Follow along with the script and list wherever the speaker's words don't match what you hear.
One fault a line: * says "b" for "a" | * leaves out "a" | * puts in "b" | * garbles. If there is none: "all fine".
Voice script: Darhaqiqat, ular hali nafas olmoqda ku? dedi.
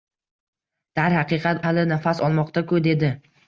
* leaves out "ular"